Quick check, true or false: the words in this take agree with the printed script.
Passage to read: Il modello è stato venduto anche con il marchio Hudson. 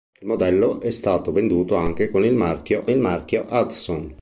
false